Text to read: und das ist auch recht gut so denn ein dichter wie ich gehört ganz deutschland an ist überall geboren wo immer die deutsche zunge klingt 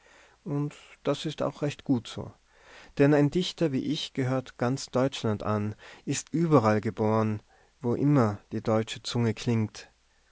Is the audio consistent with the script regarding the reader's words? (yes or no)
yes